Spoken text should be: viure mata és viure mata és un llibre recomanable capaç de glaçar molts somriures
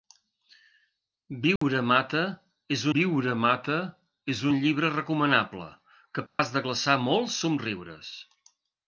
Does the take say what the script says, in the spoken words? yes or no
yes